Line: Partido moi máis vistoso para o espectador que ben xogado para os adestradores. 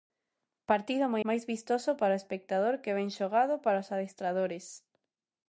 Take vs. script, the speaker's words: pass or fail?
pass